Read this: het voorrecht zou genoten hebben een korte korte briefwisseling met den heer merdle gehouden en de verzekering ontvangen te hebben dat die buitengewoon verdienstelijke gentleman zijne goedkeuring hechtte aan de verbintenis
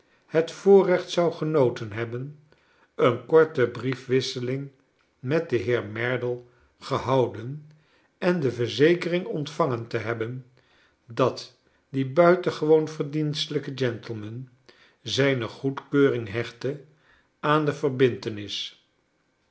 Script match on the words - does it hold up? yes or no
no